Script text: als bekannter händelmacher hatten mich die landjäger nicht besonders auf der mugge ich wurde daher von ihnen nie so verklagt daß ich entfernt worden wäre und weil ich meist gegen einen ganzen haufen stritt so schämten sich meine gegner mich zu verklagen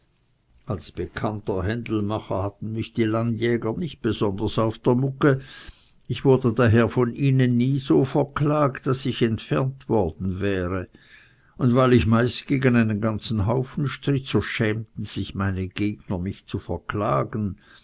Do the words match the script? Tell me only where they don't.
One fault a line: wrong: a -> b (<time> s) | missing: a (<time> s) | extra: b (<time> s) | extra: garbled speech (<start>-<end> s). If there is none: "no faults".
no faults